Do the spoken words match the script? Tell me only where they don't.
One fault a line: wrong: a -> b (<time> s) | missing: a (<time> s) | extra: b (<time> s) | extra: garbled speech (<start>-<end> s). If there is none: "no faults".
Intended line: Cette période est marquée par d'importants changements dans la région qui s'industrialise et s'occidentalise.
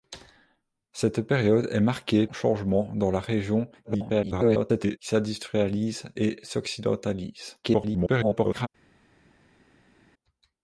missing: par d'importants (2.2 s)
extra: garbled speech (3.8-5.0 s)
extra: garbled speech (7.6-8.7 s)